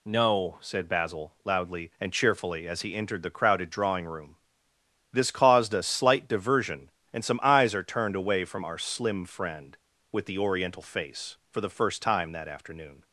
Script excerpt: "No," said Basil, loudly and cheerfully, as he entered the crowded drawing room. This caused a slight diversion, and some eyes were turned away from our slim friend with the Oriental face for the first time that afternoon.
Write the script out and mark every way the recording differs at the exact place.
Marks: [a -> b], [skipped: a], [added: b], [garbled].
"No," said Basil, loudly and cheerfully, as he entered the crowded drawing room. This caused a slight diversion, and some eyes [were -> are] turned away from our slim friend with the Oriental face for the first time that afternoon.